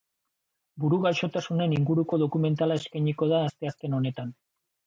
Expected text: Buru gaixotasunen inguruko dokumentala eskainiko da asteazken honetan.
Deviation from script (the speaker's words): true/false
false